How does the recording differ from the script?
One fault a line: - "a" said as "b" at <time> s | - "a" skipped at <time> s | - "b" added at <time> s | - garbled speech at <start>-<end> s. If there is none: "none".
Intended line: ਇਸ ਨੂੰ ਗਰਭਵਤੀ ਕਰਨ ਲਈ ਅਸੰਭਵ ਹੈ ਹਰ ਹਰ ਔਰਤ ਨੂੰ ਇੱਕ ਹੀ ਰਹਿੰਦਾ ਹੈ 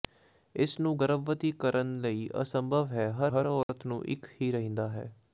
none